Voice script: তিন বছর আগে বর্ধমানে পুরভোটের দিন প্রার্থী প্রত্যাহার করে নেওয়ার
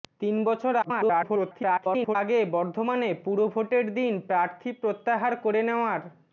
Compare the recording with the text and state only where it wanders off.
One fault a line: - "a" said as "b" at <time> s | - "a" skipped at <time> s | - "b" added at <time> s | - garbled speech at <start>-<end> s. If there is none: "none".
- garbled speech at 0.8-2.2 s